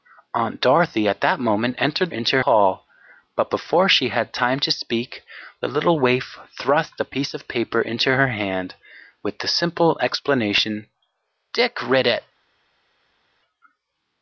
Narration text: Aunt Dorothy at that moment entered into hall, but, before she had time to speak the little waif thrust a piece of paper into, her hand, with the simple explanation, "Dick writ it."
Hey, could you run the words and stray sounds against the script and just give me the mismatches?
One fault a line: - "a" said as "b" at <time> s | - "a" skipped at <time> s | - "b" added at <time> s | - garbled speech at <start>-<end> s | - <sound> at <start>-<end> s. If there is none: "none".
none